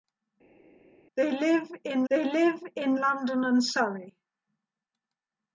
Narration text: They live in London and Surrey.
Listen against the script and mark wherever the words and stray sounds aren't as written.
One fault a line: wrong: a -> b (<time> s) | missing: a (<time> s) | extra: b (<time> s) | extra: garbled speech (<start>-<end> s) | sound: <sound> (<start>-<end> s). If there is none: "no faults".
extra: they live in (2.1 s)